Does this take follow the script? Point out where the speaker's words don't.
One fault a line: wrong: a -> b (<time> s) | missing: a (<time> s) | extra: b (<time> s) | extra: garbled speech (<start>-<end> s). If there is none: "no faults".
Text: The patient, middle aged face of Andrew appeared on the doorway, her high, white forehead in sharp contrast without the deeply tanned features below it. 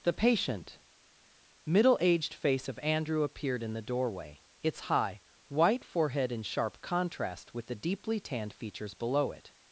wrong: on -> in (3.6 s)
wrong: her -> its (4.6 s)
wrong: without -> with (7.5 s)